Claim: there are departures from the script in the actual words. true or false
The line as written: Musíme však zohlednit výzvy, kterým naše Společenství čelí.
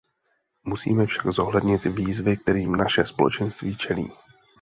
false